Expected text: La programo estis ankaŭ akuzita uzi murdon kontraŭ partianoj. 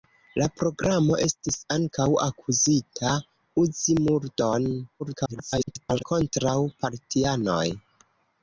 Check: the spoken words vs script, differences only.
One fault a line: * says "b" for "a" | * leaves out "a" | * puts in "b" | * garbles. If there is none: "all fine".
* garbles